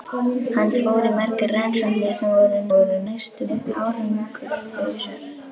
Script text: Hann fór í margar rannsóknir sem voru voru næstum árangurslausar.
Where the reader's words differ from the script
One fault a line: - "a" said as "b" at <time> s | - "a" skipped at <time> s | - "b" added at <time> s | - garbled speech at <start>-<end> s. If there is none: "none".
none